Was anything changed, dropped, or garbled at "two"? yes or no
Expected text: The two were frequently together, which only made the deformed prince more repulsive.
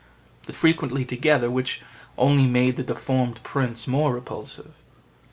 yes